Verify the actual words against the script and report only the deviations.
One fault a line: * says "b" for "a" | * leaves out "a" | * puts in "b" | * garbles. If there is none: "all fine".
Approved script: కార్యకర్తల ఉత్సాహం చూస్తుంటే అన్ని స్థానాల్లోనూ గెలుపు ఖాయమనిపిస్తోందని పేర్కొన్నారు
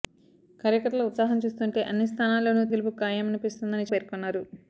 all fine